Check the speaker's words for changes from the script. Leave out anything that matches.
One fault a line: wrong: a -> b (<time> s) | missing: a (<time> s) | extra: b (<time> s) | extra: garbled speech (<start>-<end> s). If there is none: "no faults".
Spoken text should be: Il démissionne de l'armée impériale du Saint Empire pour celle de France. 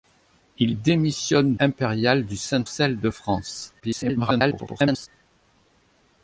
missing: de l'armée (1.6 s)
missing: Empire pour (2.7 s)
extra: garbled speech (3.8-5.1 s)